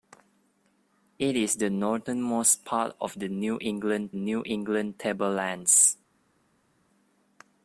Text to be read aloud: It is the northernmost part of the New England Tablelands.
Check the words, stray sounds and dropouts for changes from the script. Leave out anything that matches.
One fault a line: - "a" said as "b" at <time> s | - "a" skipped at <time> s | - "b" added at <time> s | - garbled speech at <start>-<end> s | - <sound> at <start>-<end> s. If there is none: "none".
- "New England" added at 4.1 s